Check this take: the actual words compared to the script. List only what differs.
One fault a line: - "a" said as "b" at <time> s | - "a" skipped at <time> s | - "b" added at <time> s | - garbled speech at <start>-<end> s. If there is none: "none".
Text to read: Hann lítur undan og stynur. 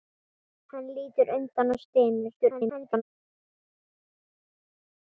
- garbled speech at 2.4-3.0 s